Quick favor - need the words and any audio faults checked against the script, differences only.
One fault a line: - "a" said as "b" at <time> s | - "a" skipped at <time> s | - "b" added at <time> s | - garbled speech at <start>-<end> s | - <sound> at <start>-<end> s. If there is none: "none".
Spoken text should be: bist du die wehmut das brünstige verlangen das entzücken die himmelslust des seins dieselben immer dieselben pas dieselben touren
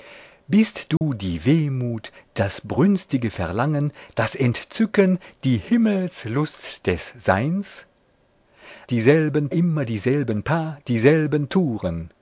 - dropout at 1.0-1.0 s